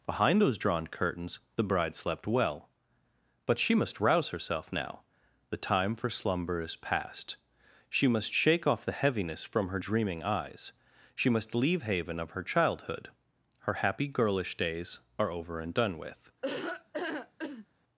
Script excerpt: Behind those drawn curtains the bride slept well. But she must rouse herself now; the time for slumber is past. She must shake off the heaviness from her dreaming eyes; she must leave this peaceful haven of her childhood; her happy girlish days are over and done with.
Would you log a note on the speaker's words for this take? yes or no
yes